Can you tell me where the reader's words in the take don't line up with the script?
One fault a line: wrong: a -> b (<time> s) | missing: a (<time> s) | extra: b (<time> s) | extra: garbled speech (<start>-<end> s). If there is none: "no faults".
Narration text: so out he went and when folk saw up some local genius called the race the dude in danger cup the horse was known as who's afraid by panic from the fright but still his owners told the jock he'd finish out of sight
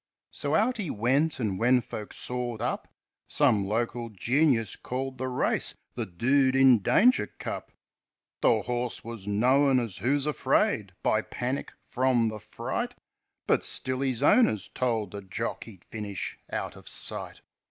no faults